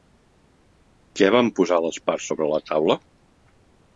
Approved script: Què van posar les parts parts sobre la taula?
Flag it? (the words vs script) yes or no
yes